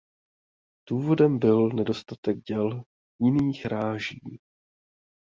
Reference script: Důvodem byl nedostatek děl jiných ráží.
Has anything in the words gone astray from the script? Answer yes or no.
no